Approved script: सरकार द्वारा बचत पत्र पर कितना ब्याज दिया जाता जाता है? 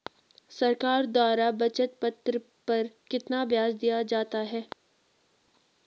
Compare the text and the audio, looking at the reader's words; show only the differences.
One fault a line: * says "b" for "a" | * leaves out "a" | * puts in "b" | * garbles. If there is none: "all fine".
* leaves out "जाता"